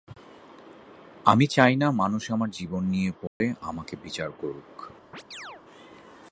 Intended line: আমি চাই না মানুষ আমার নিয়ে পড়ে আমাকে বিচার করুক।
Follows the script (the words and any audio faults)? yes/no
no